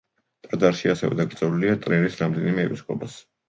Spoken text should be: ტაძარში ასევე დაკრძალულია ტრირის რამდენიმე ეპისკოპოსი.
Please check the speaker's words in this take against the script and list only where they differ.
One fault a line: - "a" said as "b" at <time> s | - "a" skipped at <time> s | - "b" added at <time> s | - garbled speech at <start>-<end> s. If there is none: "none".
none